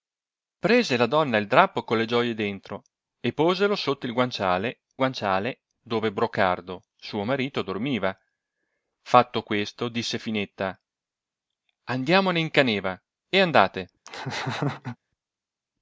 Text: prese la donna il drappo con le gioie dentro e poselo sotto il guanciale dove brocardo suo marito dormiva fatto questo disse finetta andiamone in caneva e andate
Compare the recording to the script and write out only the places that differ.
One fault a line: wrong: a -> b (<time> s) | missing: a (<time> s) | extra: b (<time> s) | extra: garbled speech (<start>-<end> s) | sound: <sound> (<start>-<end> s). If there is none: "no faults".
extra: guanciale (5.0 s)
sound: laugh (14.1-15.0 s)